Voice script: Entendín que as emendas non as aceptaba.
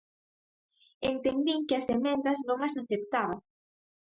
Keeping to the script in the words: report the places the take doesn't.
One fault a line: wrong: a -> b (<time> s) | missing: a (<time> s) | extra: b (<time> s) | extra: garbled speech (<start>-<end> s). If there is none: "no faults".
no faults